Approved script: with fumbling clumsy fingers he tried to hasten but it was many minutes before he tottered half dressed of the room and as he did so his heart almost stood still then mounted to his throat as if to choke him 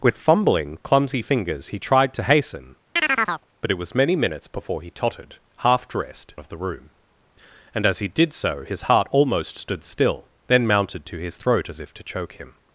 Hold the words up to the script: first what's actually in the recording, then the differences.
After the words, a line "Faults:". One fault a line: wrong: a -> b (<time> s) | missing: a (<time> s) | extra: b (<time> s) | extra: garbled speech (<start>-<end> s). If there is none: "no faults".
with fumbling clumsy fingers he tried to hasten but it was many minutes before he tottered half dressed of the room and as he did so his heart almost stood still then mounted to his throat as if to choke him
Faults:
no faults